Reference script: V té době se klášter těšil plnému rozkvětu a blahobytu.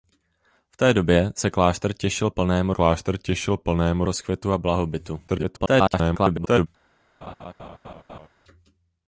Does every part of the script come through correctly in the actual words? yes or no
no